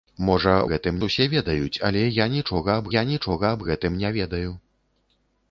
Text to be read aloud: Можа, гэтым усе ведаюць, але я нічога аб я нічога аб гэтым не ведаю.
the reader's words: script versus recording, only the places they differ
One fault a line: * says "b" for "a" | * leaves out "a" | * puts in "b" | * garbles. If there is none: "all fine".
all fine